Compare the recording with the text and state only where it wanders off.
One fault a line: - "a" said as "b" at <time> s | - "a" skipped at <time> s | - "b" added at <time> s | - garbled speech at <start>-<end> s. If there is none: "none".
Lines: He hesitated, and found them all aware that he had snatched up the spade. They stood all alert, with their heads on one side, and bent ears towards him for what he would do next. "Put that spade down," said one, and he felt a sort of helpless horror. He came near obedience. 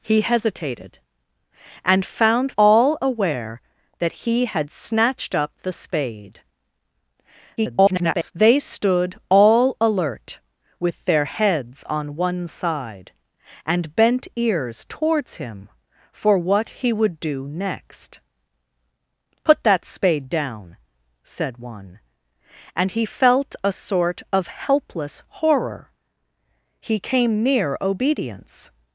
- "them" skipped at 2.5 s
- garbled speech at 7.6-8.3 s